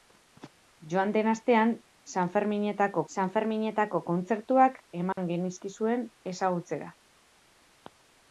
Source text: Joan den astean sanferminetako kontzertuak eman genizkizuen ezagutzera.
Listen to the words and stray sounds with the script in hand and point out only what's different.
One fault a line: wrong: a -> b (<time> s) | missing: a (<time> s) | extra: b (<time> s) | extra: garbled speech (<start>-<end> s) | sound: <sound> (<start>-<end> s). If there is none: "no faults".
extra: sanferminetako (3.1 s)
sound: dropout (5.1-5.2 s)